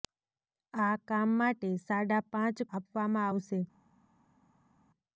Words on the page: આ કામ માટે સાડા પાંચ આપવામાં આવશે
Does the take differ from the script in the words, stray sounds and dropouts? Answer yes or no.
no